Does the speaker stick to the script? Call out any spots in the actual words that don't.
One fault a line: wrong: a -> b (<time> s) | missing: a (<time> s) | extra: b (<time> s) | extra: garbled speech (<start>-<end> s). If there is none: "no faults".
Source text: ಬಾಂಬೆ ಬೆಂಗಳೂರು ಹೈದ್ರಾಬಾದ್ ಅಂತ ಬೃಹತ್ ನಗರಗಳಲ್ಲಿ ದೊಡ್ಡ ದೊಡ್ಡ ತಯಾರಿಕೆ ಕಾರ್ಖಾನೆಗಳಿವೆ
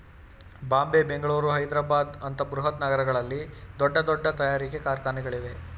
no faults